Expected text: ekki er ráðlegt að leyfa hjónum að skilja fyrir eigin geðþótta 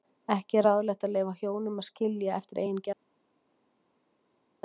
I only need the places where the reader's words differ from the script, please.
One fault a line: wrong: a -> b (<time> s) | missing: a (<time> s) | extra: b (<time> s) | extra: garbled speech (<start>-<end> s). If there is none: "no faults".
wrong: fyrir -> eftir (2.4 s)